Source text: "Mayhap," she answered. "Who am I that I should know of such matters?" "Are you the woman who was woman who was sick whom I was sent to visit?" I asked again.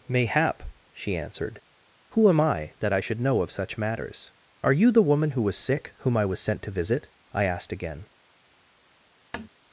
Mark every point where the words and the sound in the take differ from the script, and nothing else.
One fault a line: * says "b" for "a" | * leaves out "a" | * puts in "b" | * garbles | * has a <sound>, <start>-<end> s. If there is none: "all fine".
* leaves out "woman who was"
* has a tap, 9.3-9.5 s